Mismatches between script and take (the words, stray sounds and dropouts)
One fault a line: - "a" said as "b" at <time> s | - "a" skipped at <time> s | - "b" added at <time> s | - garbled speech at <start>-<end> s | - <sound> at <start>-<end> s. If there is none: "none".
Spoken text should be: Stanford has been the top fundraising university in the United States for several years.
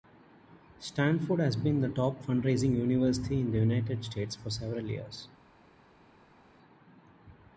none